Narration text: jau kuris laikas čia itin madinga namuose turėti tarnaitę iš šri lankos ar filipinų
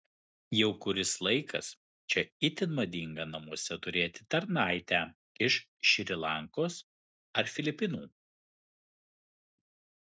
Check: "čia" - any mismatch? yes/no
no